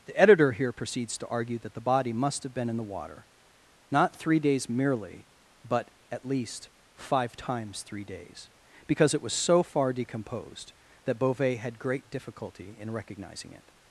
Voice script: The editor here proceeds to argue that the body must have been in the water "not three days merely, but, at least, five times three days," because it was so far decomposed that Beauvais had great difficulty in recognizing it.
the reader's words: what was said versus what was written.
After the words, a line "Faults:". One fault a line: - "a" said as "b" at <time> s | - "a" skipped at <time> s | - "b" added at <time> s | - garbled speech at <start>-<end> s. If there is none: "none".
The editor here proceeds to argue that the body must have been in the water "not three days merely, but, at least, five times three days," because it was so far decomposed that Beauvais had great difficulty in recognizing it.
Faults:
none